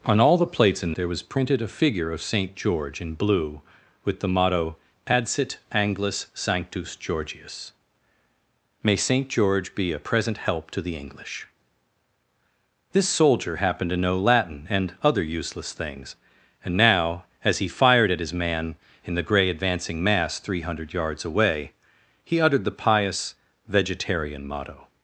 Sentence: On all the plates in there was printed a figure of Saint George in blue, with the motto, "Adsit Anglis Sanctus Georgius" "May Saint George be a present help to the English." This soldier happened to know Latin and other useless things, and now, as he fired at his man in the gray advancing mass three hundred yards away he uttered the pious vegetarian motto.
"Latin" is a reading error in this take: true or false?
false